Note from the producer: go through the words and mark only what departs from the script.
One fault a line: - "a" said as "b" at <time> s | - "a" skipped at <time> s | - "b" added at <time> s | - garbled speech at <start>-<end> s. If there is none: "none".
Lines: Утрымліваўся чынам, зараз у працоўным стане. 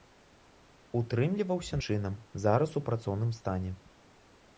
none